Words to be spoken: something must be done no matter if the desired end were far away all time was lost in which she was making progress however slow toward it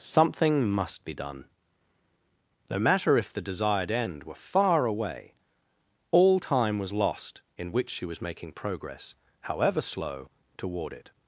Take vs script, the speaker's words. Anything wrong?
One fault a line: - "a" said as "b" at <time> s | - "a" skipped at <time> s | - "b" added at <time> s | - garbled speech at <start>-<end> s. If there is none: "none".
none